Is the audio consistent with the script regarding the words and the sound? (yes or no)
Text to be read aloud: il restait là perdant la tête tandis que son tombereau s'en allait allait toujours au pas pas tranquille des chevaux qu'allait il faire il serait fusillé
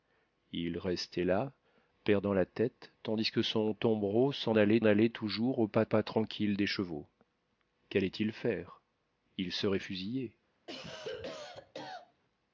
no